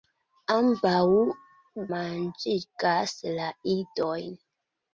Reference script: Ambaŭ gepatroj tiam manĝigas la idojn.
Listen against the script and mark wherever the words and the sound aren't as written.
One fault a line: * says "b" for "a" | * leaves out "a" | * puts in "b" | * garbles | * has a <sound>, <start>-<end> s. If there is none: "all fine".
* leaves out "gepatroj tiam"